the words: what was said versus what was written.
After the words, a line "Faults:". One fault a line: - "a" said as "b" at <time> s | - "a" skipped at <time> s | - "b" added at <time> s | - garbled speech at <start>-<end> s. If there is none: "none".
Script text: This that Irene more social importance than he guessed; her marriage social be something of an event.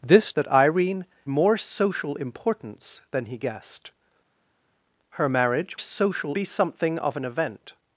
This that Irene more social importance than he guessed; her marriage social be something of an event.
Faults:
none